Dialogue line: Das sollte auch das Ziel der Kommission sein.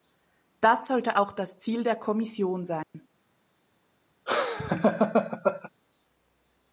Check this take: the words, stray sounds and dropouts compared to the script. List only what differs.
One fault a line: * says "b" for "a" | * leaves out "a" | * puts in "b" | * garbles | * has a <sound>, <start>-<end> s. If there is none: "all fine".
* has a dropout, 2.8-2.9 s
* has a laugh, 4.3-5.7 s